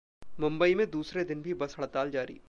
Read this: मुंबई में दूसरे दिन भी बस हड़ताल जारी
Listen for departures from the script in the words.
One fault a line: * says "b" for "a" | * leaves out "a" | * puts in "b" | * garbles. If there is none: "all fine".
all fine